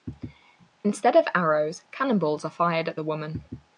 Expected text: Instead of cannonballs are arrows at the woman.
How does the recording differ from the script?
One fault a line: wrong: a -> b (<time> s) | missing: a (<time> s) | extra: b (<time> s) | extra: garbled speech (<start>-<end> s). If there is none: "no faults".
extra: arrows (1.4 s)
wrong: arrows -> fired (2.5 s)